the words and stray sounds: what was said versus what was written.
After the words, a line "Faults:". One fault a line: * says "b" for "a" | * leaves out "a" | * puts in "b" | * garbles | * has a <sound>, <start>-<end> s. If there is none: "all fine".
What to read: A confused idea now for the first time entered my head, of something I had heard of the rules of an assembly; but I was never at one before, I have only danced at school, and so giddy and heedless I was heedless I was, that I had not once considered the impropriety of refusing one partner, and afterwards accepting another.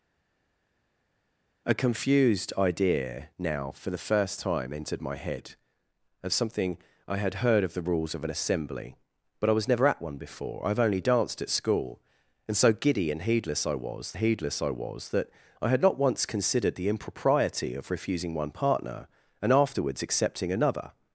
A confused idea now for the first time entered my head, of something I had heard of the rules of an assembly; but I was never at one before, I have only danced at school, and so giddy and heedless I was heedless I was, that I had not once considered the impropriety of refusing one partner, and afterwards accepting another.
Faults:
all fine